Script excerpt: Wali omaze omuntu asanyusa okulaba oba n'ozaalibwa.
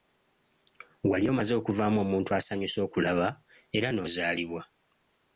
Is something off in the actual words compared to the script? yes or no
yes